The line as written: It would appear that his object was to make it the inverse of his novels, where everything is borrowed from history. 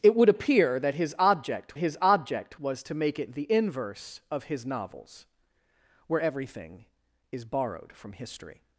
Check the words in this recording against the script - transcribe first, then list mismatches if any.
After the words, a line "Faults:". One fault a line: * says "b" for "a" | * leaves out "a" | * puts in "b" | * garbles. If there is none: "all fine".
It would appear that his object his object was to make it the inverse of his novels, where everything is borrowed from history.
Faults:
* puts in "his object"